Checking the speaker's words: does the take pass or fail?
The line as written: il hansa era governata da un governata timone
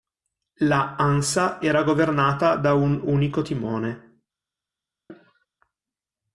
fail